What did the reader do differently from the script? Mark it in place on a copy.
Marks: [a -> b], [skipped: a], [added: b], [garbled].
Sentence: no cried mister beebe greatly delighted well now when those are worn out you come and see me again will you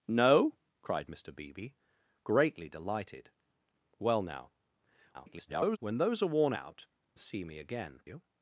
no cried mister beebe greatly delighted well now [garbled] when those are worn out [skipped: you come and] see me again [skipped: will] you